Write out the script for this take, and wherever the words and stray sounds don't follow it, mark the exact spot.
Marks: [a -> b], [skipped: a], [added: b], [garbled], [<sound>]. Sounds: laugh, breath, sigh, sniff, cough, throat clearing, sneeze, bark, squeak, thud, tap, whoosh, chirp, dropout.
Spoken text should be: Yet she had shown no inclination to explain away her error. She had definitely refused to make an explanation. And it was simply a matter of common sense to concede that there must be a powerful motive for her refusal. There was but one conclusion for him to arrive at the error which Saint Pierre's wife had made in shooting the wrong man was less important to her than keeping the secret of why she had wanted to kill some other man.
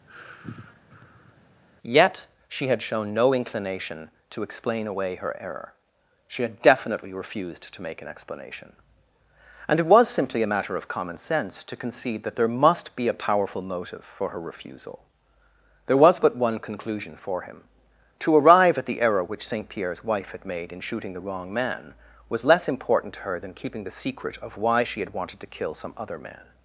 [sigh] Yet she had shown no inclination to explain away her error. She had definitely refused to make an explanation. And it was simply a matter of common sense to concede that there must be a powerful motive for her refusal. There was but one conclusion for him to arrive at the error which Saint Pierre's wife had made in shooting the wrong man was less important to her than keeping the secret of why she had wanted to kill some other man.